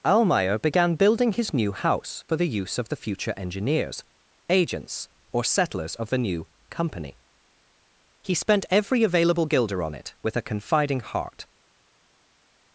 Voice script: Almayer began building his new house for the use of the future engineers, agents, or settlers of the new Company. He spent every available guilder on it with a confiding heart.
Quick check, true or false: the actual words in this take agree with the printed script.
true